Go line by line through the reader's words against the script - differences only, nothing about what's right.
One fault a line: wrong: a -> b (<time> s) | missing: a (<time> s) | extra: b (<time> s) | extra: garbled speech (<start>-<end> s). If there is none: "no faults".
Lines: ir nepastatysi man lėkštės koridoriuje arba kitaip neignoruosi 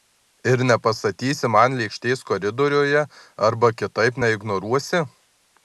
no faults